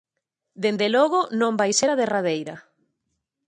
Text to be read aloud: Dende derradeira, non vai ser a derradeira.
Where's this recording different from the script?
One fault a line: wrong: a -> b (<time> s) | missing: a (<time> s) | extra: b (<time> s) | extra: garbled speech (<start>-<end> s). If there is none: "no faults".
wrong: derradeira -> logo (0.9 s)